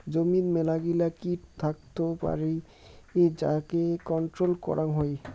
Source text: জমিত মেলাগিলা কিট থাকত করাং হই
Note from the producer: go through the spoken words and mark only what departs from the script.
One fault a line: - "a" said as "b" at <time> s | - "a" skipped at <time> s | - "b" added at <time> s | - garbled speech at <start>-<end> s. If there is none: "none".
- "পারি যাকে কন্ট্রোল" added at 2.2 s